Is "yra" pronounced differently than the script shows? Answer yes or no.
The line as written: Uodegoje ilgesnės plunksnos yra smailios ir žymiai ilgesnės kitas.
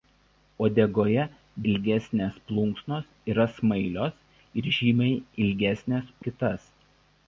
no